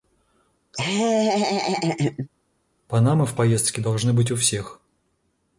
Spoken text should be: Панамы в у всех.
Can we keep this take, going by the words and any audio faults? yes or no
no